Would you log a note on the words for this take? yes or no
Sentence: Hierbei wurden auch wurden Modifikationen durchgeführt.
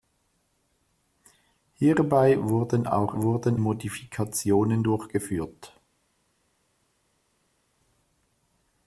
no